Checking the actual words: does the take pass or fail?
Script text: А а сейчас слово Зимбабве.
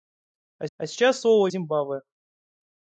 pass